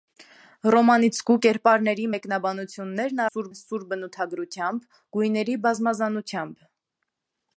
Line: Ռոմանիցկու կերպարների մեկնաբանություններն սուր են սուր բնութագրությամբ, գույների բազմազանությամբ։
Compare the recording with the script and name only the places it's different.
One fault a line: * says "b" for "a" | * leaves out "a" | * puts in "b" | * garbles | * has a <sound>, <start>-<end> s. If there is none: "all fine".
all fine